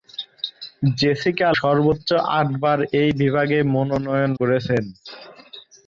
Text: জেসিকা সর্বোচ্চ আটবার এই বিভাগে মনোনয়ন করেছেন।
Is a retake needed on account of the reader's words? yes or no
no